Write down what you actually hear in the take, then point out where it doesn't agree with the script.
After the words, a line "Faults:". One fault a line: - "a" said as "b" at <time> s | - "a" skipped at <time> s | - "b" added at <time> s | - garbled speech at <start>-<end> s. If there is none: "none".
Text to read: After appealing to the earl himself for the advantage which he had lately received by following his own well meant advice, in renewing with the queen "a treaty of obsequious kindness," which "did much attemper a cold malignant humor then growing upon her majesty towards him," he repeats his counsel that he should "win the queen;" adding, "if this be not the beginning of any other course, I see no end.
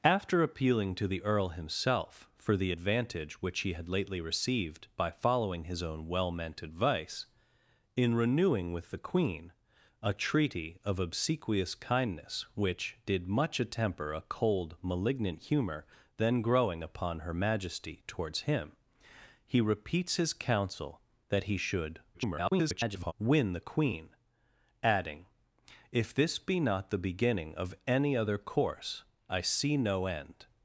After appealing to the earl himself for the advantage which he had lately received by following his own well meant advice, in renewing with the queen "a treaty of obsequious kindness," which "did much attemper a cold malignant humor then growing upon her majesty towards him," he repeats his counsel that he should [garbled] "win the queen;" adding, "if this be not the beginning of any other course, I see no end.
Faults:
- garbled speech at 22.1-23.1 s